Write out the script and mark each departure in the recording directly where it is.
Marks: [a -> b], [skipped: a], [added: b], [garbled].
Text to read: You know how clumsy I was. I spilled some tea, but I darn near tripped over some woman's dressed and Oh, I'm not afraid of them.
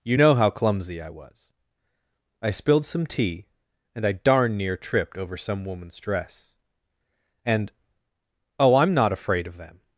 You know how clumsy I was. I spilled some tea, [but -> and] I darn near tripped over some woman's [dressed -> dress] and Oh, I'm not afraid of them.